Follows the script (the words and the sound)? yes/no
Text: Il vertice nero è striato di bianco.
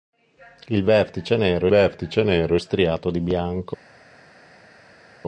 no